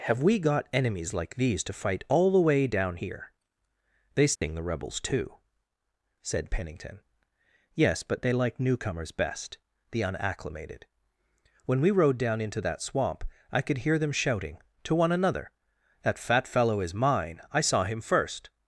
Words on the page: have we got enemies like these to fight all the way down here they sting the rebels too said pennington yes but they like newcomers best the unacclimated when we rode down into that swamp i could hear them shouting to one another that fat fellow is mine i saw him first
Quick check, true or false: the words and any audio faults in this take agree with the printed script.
false